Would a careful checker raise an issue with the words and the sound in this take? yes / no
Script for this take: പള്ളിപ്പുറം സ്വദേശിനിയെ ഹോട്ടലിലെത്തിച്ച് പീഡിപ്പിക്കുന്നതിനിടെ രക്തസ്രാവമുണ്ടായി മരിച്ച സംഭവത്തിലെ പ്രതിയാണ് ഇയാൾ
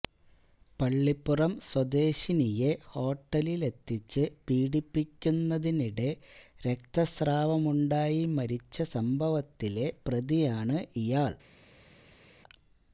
no